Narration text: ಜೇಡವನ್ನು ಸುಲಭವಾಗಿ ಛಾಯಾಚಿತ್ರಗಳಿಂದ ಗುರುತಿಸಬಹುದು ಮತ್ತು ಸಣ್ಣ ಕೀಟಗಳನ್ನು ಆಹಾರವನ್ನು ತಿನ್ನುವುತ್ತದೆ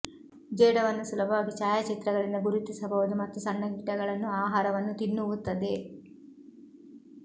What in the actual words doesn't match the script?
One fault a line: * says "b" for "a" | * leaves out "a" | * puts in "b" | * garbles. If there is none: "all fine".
all fine